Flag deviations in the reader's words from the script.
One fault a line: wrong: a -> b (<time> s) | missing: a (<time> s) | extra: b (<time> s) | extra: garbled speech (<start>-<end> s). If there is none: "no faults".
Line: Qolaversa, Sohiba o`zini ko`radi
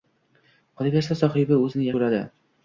no faults